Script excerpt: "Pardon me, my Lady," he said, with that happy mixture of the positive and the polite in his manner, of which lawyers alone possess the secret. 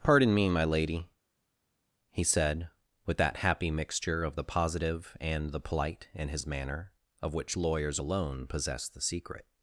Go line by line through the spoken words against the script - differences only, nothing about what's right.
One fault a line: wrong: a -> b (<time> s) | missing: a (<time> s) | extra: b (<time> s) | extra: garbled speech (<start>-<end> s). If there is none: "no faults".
no faults